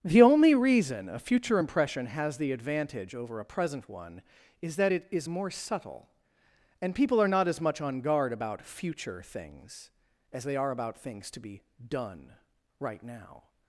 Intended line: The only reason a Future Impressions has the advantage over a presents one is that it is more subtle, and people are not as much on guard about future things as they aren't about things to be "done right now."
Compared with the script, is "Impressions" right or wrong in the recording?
wrong